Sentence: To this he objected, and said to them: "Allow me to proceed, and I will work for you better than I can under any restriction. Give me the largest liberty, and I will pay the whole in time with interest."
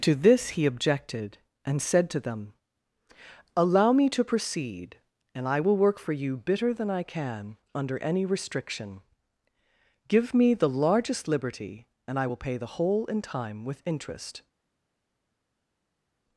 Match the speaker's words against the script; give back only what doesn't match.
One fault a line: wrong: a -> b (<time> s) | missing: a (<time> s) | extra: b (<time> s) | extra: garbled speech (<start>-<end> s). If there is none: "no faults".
wrong: better -> bitter (6.4 s)